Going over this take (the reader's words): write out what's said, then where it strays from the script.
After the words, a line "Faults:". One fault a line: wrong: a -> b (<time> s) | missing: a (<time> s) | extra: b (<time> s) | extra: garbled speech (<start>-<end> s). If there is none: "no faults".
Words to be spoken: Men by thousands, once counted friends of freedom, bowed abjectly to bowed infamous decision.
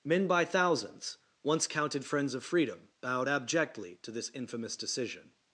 Men by thousands, once counted friends of freedom, bowed abjectly to this infamous decision.
Faults:
wrong: bowed -> this (4.1 s)